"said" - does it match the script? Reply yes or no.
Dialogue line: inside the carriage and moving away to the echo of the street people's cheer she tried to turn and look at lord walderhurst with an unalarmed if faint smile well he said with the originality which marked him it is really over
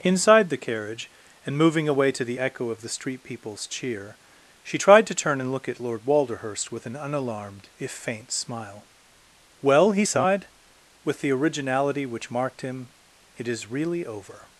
no